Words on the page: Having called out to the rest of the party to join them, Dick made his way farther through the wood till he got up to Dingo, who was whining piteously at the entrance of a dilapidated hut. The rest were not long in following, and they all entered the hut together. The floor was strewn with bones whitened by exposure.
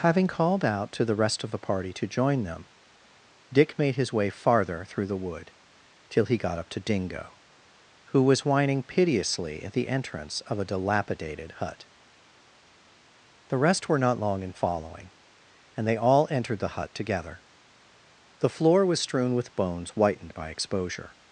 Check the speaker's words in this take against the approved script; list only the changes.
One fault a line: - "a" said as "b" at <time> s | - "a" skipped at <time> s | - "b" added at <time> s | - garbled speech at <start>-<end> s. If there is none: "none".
none